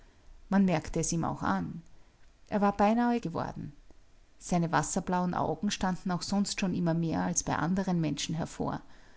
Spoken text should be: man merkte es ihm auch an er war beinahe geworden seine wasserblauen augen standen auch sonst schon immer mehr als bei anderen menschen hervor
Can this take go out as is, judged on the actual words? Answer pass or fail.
pass